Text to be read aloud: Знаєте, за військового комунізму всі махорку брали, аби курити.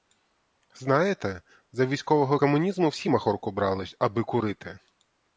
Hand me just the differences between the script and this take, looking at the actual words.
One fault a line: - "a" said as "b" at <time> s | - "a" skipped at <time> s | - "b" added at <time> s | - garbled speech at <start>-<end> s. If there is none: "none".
none